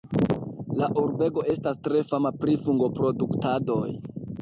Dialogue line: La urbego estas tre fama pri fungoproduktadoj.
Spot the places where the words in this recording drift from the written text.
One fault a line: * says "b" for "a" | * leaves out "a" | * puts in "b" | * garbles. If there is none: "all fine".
all fine